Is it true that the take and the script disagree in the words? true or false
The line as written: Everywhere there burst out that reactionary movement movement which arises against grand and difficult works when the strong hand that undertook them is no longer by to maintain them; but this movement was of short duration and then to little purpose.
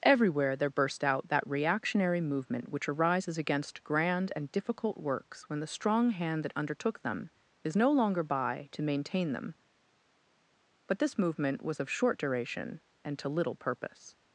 true